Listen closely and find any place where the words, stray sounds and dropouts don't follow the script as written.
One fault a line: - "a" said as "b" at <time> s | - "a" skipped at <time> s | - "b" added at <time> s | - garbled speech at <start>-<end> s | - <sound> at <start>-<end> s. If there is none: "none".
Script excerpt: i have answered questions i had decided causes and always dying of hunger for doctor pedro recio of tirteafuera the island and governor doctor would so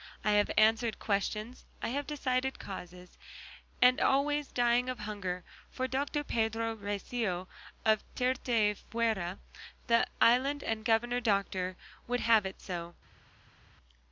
- "had" said as "have" at 1.9 s
- "have it" added at 12.2 s